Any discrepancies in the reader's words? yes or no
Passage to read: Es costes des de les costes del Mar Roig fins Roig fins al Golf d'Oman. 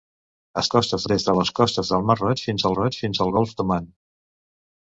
no